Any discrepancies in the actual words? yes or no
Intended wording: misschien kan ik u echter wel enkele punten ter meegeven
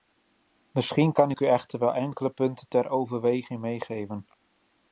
yes